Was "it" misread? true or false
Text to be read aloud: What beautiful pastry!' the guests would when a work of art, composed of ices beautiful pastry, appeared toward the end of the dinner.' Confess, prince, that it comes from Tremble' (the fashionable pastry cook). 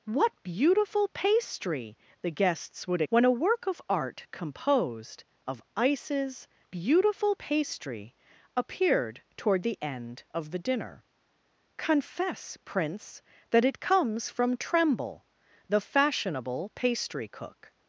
false